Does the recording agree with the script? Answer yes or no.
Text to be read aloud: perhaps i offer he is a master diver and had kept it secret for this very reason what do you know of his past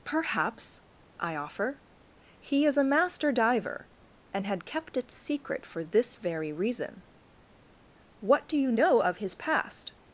yes